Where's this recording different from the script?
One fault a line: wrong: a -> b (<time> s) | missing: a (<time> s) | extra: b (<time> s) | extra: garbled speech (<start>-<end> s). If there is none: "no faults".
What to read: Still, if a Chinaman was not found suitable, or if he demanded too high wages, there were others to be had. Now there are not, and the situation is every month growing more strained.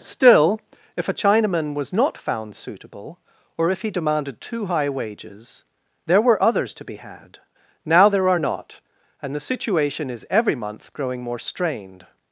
no faults